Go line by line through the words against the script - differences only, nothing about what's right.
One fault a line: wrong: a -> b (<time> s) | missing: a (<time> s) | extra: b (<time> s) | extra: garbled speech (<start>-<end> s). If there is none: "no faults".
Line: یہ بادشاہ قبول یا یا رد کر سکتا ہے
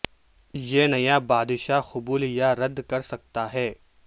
extra: نیا (0.9 s)
missing: یا (2.5 s)